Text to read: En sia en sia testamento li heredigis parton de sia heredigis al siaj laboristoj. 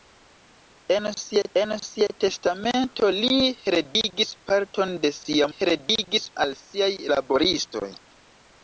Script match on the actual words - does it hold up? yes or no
yes